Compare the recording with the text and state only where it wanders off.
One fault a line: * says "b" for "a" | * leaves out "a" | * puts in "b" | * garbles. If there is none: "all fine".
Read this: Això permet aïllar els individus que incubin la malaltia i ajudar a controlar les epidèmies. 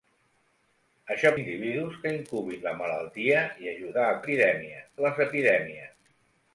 * leaves out "permet aïllar els"
* says "epidèmies" for "controlar"